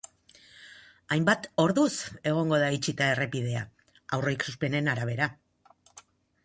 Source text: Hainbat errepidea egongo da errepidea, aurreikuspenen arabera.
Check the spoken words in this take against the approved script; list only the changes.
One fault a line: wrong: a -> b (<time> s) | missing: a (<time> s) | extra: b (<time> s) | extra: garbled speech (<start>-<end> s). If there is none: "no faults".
wrong: errepidea -> orduz (1.6 s)
extra: itxita (2.8 s)